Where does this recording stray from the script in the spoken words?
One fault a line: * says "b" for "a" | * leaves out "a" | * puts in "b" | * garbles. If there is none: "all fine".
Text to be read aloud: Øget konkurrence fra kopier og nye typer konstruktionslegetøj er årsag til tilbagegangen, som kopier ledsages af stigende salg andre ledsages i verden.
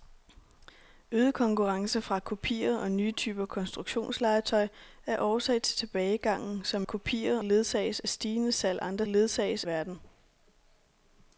all fine